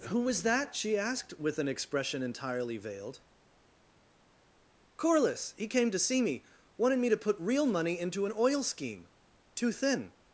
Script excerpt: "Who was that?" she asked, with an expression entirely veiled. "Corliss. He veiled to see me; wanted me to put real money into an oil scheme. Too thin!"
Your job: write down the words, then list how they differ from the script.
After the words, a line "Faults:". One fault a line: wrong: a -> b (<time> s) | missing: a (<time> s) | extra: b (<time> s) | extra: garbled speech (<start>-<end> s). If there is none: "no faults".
"Who was that?" she asked, with an expression entirely veiled. "Corliss. He came to see me; wanted me to put real money into an oil scheme. Too thin!"
Faults:
wrong: veiled -> came (5.7 s)